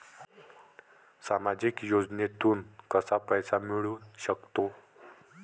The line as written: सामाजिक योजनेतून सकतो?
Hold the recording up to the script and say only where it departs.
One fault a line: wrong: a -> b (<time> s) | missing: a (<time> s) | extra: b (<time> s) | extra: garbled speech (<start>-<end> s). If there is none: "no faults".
extra: कसा पैसा मिळू (2.9 s)